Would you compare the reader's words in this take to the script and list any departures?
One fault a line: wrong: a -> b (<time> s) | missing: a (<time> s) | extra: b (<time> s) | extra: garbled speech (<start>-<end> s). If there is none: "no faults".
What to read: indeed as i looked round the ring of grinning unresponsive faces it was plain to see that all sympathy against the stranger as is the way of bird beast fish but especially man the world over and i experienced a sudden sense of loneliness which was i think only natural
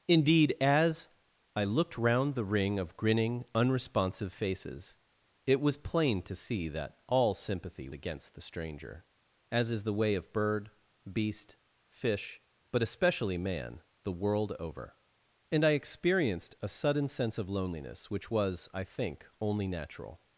no faults